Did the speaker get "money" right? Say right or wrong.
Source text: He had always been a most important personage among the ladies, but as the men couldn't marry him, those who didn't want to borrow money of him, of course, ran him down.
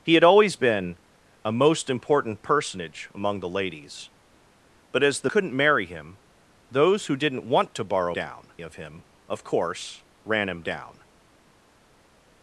wrong